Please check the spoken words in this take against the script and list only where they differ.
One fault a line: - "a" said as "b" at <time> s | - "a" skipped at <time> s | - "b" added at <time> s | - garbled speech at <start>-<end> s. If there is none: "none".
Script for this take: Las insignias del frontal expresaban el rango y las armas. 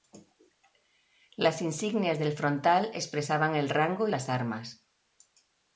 none